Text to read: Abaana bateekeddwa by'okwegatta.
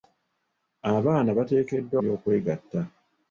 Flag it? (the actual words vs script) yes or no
no